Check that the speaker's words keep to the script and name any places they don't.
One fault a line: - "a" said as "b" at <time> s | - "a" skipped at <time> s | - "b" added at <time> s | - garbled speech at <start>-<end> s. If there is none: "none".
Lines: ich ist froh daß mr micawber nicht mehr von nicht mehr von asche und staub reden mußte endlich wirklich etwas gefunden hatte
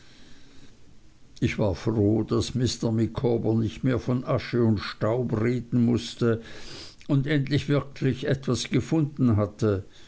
- "ist" said as "war" at 1.6 s
- "nicht mehr von" skipped at 4.2 s
- "und" added at 7.1 s